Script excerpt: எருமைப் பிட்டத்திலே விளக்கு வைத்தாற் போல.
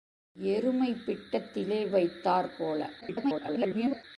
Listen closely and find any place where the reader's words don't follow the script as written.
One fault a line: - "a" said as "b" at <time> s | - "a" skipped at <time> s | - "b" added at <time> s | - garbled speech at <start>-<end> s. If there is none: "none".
- "விளக்கு" skipped at 1.9 s
- garbled speech at 3.0-4.0 s